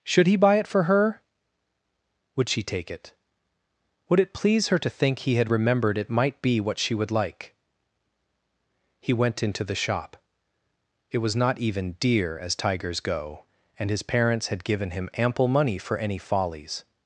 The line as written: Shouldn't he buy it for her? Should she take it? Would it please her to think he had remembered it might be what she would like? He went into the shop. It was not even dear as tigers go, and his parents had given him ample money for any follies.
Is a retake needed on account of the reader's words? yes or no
yes